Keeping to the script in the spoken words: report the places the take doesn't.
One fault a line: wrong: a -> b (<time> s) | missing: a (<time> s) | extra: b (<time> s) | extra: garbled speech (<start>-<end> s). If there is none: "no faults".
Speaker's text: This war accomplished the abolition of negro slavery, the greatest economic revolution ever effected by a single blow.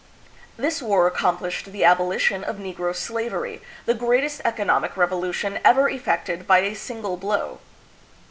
no faults